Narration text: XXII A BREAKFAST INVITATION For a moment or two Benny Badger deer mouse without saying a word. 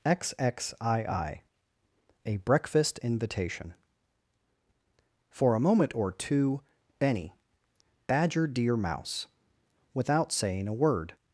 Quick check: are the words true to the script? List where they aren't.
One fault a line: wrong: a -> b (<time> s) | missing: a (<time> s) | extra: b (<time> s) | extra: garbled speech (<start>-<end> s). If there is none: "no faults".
no faults